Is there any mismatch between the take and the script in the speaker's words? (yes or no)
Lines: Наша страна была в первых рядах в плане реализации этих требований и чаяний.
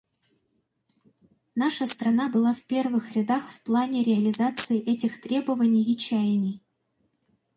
no